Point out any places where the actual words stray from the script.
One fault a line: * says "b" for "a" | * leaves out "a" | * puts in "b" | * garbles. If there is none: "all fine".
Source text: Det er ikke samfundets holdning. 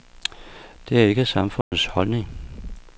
all fine